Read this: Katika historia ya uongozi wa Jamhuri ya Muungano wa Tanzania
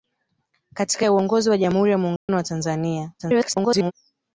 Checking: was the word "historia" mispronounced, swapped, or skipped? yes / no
yes